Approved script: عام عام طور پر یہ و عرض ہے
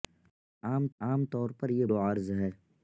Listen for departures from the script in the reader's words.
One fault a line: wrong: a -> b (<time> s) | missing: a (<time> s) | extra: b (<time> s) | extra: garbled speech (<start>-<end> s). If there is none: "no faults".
no faults